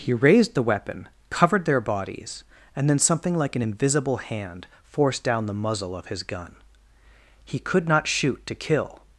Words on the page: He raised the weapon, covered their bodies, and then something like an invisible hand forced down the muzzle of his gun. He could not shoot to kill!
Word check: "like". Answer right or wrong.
right